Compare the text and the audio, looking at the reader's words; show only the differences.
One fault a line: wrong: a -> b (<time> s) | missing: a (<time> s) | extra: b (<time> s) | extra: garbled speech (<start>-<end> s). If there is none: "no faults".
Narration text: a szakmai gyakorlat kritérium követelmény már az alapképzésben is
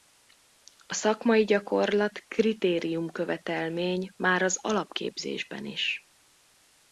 no faults